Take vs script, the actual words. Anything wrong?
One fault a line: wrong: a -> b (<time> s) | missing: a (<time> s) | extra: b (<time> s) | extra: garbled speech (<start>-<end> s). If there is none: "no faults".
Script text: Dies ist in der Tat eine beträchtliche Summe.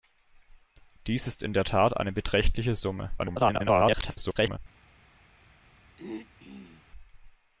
extra: garbled speech (3.2-4.6 s)